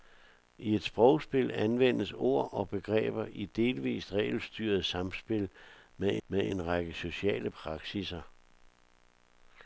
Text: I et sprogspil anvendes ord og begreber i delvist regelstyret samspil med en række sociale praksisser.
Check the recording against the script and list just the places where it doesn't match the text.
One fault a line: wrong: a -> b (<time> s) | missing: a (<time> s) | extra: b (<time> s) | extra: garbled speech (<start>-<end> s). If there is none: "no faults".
extra: med (6.3 s)